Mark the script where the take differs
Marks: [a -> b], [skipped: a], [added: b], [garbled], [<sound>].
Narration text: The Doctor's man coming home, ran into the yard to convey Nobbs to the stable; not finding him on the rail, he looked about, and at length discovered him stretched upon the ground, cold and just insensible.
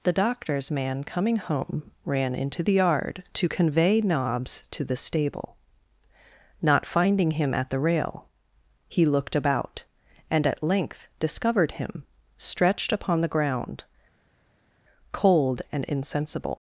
The Doctor's man coming home, ran into the yard to convey Nobbs to the stable; not finding him [on -> at] the rail, he looked about, and at length discovered him stretched upon the ground, cold and [skipped: just] insensible.